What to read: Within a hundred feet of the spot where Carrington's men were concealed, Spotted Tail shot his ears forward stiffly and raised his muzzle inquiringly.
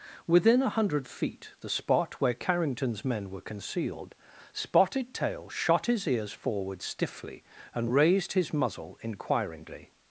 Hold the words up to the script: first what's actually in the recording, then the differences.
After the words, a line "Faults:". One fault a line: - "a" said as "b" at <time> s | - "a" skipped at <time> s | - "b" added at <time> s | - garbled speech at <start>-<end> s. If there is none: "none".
Within a hundred feet the spot where Carrington's men were concealed, Spotted Tail shot his ears forward stiffly and raised his muzzle inquiringly.
Faults:
- "of" skipped at 1.5 s